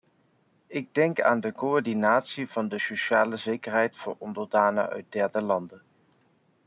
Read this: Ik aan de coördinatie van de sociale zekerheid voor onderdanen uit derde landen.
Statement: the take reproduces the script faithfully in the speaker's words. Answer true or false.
false